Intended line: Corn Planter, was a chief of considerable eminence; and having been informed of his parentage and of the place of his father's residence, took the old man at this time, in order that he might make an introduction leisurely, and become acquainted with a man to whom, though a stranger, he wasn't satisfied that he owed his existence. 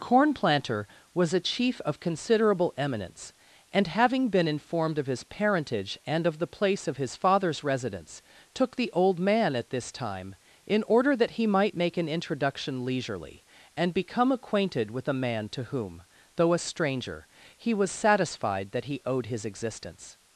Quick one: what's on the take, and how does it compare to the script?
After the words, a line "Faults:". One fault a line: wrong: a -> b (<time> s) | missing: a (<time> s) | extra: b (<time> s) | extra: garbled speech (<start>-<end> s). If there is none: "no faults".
Corn Planter, was a chief of considerable eminence; and having been informed of his parentage and of the place of his father's residence, took the old man at this time, in order that he might make an introduction leisurely, and become acquainted with a man to whom, though a stranger, he was satisfied that he owed his existence.
Faults:
wrong: wasn't -> was (17.7 s)